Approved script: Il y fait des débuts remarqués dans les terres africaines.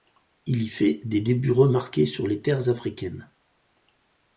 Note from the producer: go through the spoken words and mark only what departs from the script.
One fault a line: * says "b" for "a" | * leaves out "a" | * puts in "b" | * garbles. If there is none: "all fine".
* says "sur" for "dans"